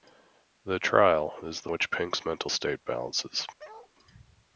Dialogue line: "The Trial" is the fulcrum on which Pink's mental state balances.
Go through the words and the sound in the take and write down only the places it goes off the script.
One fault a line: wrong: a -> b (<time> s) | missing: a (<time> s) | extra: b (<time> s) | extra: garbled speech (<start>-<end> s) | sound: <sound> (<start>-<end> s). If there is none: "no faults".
missing: fulcrum on (1.7 s)
sound: bark (3.6-3.9 s)